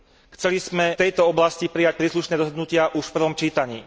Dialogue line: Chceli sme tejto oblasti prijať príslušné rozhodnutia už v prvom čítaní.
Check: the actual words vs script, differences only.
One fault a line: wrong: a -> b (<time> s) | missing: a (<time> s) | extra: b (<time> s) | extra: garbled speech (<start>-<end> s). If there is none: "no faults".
no faults